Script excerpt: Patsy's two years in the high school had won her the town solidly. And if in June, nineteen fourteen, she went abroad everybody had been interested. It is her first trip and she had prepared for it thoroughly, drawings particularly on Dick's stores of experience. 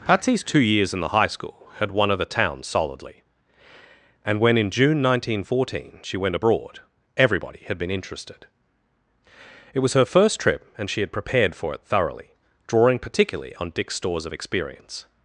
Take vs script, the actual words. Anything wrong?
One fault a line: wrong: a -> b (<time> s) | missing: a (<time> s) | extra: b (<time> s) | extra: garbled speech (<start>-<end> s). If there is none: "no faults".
wrong: if -> when (4.4 s)
wrong: is -> was (9.8 s)
wrong: drawings -> drawing (12.7 s)